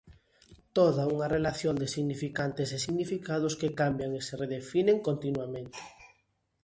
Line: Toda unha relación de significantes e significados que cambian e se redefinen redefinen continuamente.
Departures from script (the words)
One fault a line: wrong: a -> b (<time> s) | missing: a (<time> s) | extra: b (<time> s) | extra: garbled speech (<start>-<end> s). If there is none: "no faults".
missing: redefinen (5.0 s)